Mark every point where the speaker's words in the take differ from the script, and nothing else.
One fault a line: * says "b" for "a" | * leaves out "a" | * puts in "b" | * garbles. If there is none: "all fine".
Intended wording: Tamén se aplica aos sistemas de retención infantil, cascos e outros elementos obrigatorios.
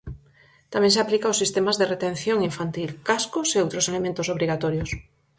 all fine